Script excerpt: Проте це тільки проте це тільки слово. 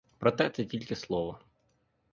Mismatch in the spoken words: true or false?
true